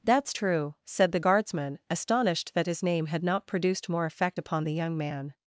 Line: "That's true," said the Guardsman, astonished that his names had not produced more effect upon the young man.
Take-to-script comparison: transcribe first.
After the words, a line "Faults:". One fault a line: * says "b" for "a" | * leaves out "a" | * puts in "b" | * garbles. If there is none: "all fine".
"That's true," said the Guardsman, astonished that his name had not produced more effect upon the young man.
Faults:
* says "name" for "names"